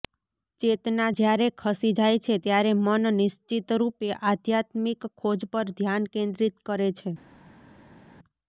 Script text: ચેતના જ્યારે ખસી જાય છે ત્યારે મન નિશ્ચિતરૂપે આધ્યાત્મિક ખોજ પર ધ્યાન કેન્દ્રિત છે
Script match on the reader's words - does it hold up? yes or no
no